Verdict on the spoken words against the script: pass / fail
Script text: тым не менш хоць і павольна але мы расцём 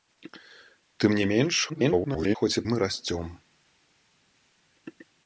fail